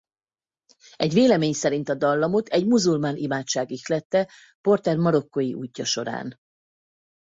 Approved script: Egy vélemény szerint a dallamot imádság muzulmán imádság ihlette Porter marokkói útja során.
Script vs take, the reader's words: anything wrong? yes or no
yes